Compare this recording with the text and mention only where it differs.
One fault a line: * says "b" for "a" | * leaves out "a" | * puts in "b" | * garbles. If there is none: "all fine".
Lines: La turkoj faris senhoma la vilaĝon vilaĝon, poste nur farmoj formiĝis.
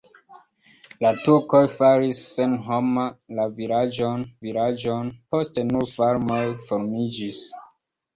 all fine